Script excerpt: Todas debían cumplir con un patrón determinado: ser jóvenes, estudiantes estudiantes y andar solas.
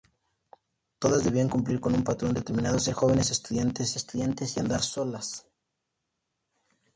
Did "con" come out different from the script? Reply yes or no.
no